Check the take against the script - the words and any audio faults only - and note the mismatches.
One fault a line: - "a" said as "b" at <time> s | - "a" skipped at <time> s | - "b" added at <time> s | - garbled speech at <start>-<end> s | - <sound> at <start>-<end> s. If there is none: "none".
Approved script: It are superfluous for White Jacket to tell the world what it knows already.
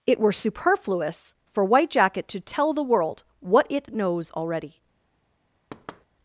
- "are" said as "were" at 0.2 s
- thud at 5.7-6.1 s